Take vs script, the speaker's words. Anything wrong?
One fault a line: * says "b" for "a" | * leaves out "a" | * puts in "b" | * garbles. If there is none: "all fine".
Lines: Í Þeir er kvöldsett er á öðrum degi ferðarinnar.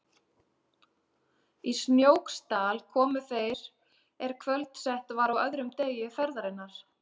* puts in "Snóksdal komu"
* says "var" for "er"